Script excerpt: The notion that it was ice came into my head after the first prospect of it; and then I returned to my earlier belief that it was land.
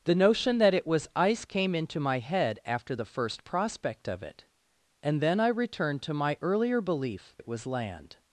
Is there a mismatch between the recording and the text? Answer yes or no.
yes